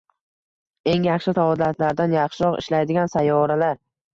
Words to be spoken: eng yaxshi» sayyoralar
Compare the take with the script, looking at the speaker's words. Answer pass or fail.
fail